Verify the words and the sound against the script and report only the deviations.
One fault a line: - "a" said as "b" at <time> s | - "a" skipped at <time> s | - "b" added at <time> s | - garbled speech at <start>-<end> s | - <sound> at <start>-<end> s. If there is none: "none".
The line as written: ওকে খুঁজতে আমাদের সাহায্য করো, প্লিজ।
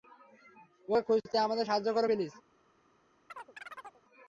- chirp at 3.3-4.0 s